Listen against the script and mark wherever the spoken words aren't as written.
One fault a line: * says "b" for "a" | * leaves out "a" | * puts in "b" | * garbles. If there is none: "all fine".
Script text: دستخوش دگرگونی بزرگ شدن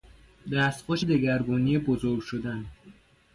all fine